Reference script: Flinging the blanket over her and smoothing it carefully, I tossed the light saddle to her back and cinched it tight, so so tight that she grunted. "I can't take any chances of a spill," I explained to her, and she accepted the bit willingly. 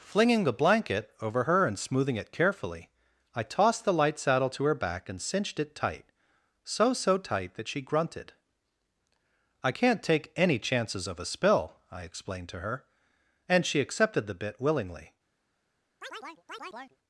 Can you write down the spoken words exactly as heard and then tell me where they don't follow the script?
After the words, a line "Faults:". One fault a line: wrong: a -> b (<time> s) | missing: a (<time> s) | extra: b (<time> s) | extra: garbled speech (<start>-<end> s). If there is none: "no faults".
Flinging the blanket over her and smoothing it carefully, I tossed the light saddle to her back and cinched it tight, so so tight that she grunted. "I can't take any chances of a spill," I explained to her, and she accepted the bit willingly.
Faults:
no faults